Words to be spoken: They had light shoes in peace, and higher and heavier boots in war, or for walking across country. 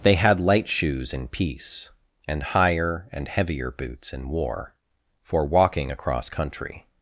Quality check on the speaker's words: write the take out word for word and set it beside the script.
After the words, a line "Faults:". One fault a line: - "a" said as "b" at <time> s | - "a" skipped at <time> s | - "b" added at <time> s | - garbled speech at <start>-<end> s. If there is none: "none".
They had light shoes in peace, and higher and heavier boots in war, for walking across country.
Faults:
- "or" skipped at 4.7 s